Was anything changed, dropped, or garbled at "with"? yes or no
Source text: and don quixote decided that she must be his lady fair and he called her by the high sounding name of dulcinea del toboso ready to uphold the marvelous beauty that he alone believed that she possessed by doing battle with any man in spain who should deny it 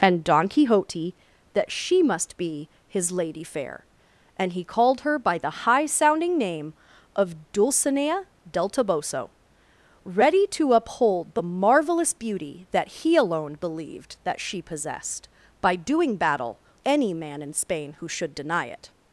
yes